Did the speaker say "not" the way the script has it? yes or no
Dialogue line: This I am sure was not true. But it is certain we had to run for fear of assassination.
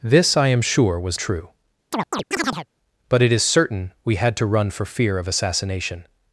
no